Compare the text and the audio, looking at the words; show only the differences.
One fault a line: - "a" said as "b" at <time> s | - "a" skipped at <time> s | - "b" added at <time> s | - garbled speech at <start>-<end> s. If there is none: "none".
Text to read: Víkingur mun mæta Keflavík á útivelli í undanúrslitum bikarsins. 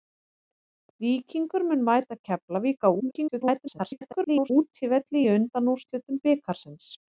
- garbled speech at 3.0-4.5 s